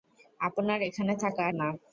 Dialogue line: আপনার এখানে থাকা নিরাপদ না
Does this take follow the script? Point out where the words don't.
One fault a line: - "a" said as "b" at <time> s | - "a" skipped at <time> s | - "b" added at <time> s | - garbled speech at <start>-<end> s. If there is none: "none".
- "নিরাপদ" skipped at 1.4 s